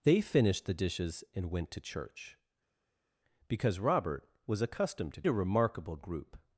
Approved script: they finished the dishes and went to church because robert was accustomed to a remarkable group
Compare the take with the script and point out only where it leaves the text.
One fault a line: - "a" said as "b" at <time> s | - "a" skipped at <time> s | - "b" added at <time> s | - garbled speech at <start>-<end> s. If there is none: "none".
none